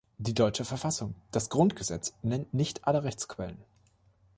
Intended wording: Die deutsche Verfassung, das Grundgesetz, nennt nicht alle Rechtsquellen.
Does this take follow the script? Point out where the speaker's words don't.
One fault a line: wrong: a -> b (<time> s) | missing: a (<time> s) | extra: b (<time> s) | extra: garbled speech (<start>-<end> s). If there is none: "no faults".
no faults